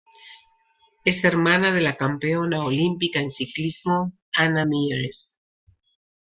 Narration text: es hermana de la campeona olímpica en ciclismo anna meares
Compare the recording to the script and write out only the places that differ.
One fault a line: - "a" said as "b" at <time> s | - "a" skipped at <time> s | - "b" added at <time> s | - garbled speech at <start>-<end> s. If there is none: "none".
none